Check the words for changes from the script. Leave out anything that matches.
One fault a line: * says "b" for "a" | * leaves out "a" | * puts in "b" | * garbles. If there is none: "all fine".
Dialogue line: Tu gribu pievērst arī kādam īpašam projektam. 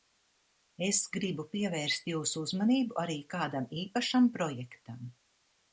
* says "Es" for "Tu"
* puts in "jūsu uzmanību"